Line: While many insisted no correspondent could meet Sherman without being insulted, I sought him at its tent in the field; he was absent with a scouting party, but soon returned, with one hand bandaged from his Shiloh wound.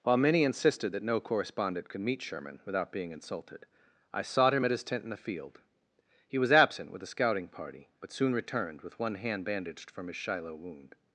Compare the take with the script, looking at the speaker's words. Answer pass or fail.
fail